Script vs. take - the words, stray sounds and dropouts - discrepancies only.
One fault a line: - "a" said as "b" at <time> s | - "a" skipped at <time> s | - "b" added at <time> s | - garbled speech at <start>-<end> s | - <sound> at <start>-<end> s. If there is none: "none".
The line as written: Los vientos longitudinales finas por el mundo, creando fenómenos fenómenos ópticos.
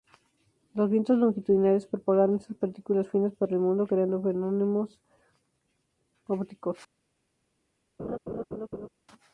- "propagaron estas partículas" added at 1.9 s
- "fenómenos" skipped at 5.0 s
- laugh at 8.0-8.9 s